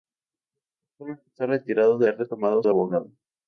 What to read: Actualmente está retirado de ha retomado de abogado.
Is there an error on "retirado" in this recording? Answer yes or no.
no